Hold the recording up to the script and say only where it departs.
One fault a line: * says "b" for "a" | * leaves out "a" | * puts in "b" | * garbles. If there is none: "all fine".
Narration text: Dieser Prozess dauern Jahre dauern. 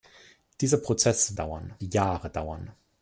all fine